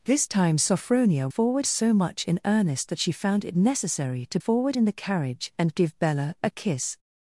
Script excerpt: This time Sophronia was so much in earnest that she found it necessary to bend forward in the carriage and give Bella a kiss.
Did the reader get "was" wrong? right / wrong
wrong